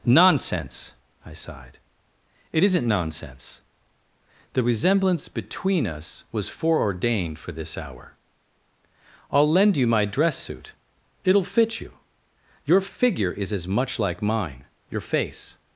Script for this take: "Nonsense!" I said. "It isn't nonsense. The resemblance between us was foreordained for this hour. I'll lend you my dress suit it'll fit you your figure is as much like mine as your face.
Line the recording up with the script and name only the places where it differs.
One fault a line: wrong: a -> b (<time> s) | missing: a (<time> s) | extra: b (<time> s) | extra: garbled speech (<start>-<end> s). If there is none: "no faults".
wrong: said -> sighed (1.3 s)
missing: as (14.7 s)